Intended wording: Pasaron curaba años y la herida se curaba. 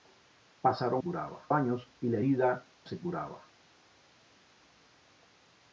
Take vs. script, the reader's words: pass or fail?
pass